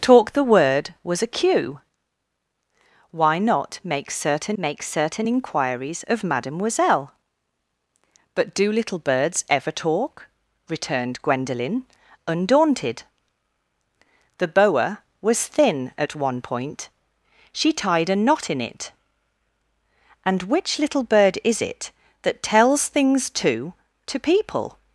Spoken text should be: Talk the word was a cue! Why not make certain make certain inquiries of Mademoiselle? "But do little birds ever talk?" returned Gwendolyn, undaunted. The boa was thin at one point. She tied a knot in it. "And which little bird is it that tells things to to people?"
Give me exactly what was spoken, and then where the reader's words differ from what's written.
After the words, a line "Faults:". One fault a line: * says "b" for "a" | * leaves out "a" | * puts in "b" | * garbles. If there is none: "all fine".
Talk the word was a cue! Why not make certain make certain inquiries of Mademoiselle? "But do little birds ever talk?" returned Gwendolyn, undaunted. The boa was thin at one point. She tied a knot in it. "And which little bird is it that tells things to to people?"
Faults:
all fine